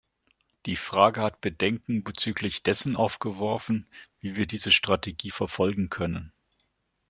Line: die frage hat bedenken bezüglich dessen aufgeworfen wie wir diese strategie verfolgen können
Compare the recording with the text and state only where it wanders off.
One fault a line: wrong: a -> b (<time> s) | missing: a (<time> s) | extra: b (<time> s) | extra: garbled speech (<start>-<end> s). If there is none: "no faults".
no faults